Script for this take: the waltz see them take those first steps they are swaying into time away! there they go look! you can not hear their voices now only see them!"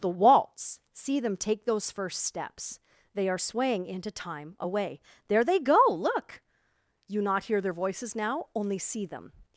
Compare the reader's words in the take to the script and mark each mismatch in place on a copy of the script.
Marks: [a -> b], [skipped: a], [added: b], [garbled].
the waltz see them take those first steps they are swaying into time away! there they go look! you [skipped: can] not hear their voices now only see them!"